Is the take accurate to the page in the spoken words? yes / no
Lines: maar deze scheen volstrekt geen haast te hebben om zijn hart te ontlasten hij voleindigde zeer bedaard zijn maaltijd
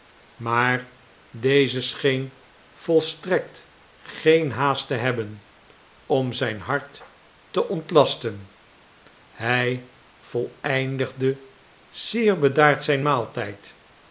yes